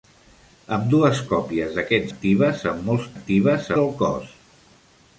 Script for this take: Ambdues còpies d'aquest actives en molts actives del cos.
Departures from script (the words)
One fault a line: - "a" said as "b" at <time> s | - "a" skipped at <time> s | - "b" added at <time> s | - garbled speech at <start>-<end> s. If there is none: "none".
none